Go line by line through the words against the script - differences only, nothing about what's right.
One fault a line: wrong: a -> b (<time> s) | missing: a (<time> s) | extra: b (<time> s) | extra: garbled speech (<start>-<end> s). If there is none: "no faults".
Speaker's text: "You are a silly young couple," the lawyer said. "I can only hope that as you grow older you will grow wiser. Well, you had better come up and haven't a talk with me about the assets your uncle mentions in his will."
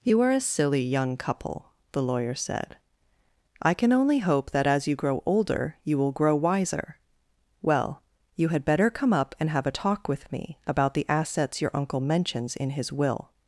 wrong: haven't -> have (9.5 s)